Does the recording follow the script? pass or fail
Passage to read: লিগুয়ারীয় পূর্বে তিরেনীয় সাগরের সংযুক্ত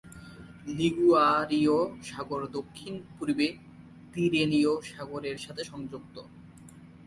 fail